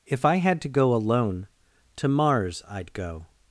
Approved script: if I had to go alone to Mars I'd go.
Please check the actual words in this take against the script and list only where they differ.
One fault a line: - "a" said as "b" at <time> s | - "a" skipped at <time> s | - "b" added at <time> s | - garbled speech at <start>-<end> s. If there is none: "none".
none